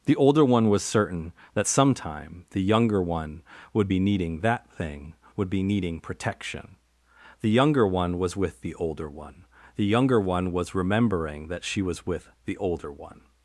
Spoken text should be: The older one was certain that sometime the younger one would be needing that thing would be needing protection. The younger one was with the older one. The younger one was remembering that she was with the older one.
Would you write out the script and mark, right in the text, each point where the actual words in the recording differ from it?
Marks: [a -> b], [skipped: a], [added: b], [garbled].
The older one was certain that sometime the younger one would be needing that thing would be needing protection. The younger one was with the older one. The younger one was remembering that she was with the older one.